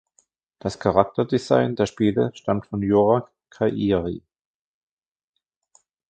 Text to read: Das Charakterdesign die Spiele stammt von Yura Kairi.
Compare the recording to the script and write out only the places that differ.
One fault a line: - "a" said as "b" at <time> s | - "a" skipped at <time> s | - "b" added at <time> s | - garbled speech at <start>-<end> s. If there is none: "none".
- "die" said as "der" at 1.8 s